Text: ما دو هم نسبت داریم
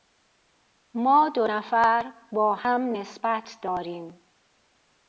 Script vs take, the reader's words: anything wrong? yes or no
yes